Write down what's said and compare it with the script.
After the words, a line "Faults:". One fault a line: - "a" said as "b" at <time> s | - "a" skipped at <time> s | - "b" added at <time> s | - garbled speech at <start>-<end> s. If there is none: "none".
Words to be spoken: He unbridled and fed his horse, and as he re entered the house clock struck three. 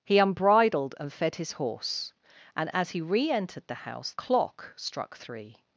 He unbridled and fed his horse, and as he re entered the house clock struck three.
Faults:
none